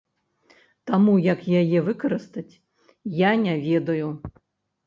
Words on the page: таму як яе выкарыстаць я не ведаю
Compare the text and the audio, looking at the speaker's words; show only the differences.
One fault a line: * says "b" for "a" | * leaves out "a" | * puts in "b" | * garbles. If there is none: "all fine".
all fine